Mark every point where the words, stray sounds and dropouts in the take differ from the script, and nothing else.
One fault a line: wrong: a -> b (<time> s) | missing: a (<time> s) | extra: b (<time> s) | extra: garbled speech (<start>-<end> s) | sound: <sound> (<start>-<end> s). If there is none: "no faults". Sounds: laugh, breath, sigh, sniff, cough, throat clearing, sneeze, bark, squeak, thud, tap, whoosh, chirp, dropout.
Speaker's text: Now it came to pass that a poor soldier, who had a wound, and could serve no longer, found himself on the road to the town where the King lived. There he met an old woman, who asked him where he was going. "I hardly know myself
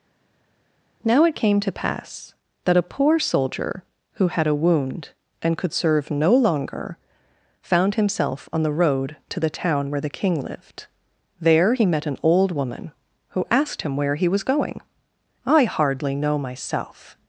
no faults